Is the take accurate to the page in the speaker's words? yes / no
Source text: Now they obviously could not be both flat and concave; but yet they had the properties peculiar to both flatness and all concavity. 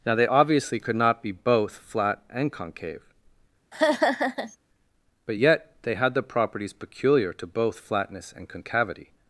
no